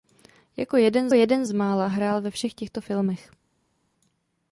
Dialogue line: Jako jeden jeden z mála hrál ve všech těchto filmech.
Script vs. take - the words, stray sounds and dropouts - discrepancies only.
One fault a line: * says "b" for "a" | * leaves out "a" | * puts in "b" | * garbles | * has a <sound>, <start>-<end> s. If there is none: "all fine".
all fine